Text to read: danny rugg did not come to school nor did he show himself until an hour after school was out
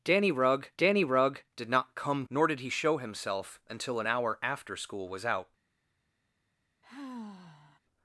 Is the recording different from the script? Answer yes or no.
yes